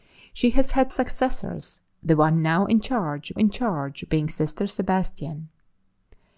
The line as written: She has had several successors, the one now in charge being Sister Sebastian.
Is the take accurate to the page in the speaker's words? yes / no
no